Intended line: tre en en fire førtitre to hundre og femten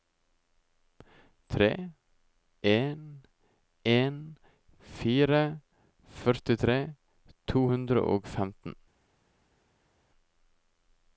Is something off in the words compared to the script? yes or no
no